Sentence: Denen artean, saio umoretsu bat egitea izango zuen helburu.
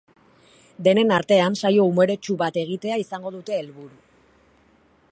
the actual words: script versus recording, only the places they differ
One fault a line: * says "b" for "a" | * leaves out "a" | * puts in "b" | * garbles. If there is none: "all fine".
* says "dute" for "zuen"